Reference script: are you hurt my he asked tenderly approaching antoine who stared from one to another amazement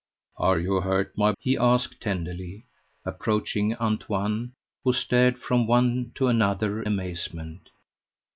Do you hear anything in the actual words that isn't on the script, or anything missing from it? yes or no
no